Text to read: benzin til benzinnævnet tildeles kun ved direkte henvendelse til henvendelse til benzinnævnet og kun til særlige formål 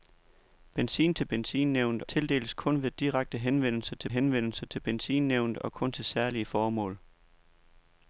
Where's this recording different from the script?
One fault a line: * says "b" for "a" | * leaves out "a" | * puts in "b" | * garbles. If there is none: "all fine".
all fine